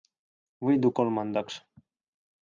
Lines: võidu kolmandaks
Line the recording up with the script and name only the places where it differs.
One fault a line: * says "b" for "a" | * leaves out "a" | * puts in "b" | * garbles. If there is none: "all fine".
all fine